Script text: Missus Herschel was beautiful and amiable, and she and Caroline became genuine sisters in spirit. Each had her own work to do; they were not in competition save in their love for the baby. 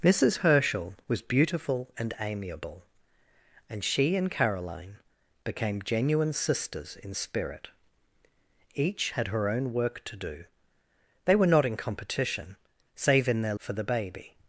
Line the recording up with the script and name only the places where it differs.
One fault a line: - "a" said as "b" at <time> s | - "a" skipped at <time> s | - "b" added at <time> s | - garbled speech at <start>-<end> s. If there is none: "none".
- "love" skipped at 13.6 s